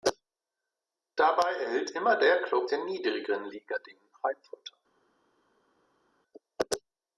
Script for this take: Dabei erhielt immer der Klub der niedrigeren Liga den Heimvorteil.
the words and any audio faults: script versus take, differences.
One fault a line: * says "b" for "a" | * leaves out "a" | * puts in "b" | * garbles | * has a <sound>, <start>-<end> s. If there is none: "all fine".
all fine